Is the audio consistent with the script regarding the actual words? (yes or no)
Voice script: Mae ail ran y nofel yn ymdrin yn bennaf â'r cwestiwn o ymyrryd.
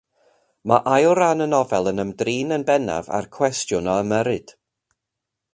yes